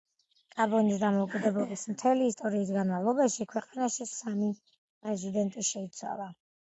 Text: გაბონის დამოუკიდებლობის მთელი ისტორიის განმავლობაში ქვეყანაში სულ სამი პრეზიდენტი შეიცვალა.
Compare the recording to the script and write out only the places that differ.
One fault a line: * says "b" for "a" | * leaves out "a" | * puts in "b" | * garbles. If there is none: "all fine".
* leaves out "სულ"